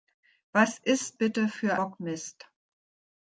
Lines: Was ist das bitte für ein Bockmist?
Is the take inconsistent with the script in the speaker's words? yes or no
yes